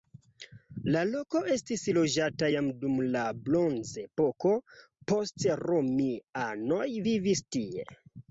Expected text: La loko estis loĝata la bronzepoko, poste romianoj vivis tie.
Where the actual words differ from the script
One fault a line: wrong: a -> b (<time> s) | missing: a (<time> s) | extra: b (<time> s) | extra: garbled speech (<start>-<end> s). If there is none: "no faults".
extra: jam dum (2.5 s)